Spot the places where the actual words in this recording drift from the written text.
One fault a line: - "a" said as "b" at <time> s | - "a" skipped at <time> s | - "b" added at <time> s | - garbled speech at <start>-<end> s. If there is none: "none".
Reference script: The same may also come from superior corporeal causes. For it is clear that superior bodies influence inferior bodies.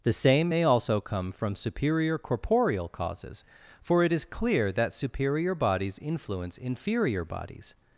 none